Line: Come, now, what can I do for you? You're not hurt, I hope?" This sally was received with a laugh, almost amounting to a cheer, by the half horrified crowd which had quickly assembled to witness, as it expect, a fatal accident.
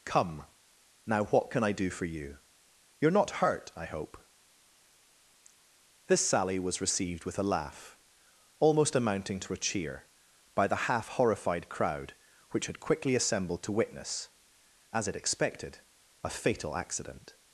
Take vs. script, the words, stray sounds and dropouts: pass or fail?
fail